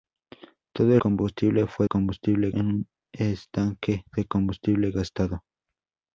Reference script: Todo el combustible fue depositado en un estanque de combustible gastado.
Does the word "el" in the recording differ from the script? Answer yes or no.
yes